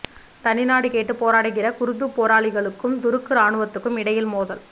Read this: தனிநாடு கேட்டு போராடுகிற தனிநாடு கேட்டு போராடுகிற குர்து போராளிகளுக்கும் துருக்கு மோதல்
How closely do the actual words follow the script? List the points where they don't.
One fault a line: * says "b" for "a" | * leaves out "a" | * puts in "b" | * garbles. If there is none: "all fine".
* leaves out "தனிநாடு கேட்டு போராடுகிற"
* puts in "ராணுவத்துக்கும் இடையில்"